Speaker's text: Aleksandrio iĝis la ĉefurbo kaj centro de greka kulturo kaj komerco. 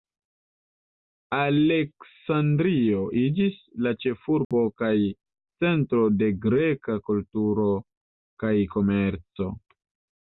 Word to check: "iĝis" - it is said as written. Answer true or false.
true